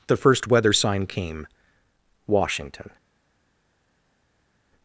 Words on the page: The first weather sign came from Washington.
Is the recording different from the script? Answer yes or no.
yes